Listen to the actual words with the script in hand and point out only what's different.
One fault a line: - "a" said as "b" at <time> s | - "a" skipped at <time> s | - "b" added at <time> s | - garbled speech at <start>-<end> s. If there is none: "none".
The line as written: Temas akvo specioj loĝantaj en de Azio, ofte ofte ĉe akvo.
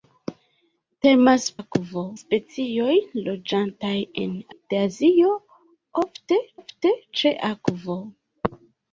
none